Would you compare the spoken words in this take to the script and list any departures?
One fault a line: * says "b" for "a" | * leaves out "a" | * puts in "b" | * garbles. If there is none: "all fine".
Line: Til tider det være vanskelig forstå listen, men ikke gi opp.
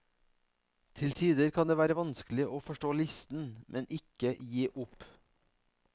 * puts in "kan"
* puts in "å"